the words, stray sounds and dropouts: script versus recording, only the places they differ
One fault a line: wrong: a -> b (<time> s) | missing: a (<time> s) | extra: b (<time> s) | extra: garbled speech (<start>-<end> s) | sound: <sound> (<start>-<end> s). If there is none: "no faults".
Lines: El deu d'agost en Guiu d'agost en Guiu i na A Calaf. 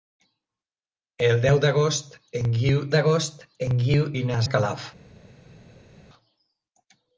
no faults